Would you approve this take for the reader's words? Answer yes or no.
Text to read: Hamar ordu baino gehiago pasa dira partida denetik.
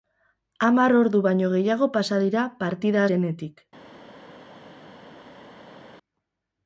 yes